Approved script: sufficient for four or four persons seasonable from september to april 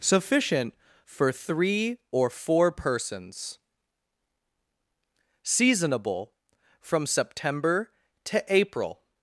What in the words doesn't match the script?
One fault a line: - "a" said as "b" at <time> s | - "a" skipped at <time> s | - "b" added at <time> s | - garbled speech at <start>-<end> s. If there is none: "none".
- "four" said as "three" at 1.3 s